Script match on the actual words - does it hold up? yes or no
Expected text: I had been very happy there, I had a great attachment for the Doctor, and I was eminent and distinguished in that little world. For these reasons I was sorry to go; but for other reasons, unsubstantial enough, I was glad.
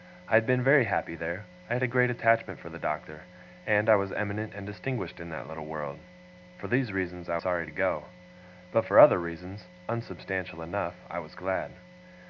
no